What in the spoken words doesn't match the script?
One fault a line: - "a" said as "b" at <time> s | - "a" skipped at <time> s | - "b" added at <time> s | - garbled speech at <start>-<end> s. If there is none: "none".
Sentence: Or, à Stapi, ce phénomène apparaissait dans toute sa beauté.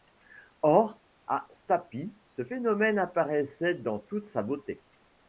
none